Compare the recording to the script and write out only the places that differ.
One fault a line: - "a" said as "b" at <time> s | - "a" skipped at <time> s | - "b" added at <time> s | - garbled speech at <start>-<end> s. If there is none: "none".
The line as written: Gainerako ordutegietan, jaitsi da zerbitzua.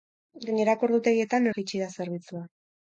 none